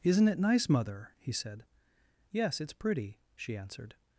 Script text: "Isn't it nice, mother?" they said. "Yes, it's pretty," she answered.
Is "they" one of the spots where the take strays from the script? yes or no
yes